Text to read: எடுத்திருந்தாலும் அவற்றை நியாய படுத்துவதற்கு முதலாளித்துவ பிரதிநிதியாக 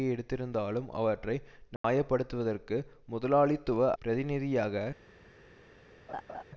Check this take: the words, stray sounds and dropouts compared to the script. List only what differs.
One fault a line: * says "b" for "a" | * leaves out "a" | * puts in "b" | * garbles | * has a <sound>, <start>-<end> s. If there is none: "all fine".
* has a dropout, 1.8-1.8 s
* has a laugh, 6.1-6.4 s